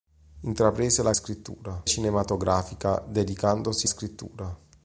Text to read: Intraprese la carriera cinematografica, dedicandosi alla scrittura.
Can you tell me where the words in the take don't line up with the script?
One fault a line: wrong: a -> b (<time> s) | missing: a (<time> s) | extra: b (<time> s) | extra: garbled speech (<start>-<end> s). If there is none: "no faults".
wrong: carriera -> scrittura (1.1 s)
missing: alla (3.9 s)